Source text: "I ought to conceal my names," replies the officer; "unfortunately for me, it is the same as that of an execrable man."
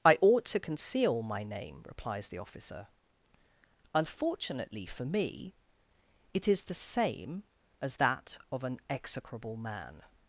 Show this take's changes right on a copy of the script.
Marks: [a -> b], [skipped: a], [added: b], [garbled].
"I ought to conceal my [names," -> name] replies the officer; "unfortunately for me, it is the same as that of an execrable man."